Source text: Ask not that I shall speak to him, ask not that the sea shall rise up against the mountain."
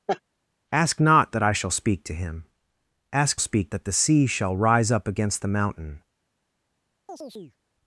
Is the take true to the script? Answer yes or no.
no